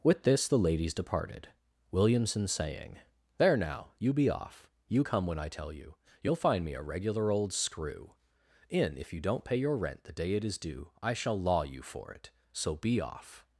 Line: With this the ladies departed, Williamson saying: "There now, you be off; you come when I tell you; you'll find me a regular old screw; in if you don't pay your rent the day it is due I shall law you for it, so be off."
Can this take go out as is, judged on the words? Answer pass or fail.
pass